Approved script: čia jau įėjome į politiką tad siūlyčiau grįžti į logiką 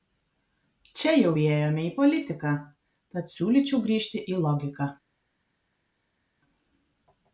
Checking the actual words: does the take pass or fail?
pass